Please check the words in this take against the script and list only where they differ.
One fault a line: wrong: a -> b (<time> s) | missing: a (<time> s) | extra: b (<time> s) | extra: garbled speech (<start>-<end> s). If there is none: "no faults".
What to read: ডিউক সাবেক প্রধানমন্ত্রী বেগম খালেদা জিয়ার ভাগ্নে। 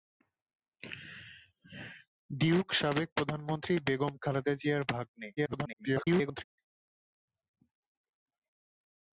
extra: garbled speech (5.4-6.4 s)